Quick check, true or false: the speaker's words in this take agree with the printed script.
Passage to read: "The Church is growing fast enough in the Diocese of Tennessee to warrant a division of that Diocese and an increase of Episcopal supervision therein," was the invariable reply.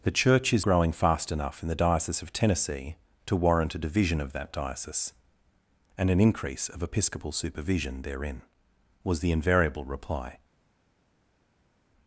true